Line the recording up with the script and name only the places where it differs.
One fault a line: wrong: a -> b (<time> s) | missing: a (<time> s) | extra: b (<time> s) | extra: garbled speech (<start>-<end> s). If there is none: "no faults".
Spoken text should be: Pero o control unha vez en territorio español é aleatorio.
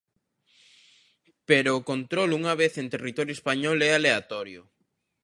no faults